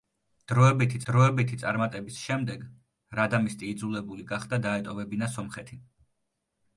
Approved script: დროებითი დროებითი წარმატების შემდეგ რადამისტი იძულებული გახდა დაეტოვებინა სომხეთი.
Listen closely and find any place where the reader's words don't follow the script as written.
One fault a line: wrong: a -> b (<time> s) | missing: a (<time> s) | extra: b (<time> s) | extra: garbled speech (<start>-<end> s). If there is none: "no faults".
no faults